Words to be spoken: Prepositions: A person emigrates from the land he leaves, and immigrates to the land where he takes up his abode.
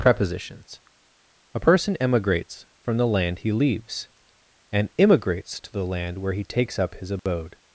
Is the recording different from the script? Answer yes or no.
no